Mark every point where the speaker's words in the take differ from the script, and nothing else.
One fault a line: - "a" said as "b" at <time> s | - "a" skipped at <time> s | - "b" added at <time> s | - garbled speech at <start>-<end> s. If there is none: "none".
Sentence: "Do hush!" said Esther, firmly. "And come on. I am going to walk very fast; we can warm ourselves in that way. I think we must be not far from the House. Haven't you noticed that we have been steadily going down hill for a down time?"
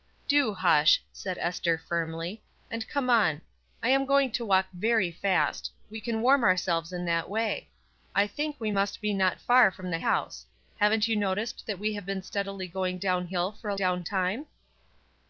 none